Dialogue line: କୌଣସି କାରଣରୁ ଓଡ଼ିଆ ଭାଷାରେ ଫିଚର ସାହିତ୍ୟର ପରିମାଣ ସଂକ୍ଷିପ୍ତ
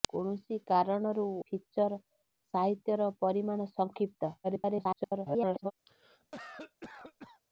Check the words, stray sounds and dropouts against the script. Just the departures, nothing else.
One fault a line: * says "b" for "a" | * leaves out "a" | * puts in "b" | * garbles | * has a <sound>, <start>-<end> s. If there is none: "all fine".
* leaves out "ଓଡ଼ିଆ ଭାଷାରେ"
* garbles
* has a cough, 5.9-7.4 s